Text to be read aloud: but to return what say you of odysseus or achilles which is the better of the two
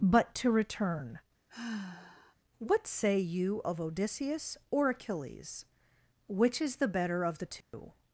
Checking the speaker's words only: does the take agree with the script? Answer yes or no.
yes